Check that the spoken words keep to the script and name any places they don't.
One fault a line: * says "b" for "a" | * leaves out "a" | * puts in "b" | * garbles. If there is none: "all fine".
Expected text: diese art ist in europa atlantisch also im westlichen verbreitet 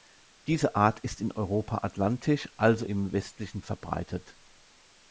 all fine